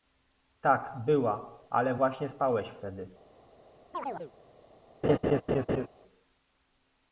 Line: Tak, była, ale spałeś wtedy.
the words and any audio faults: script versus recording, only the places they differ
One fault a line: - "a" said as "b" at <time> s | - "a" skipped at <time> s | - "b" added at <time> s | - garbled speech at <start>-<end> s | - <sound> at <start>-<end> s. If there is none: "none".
- "właśnie" added at 1.9 s
- chirp at 3.9-4.3 s
- laugh at 5.0-5.9 s